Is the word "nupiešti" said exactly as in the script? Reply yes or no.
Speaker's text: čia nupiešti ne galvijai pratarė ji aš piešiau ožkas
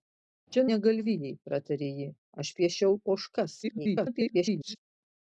no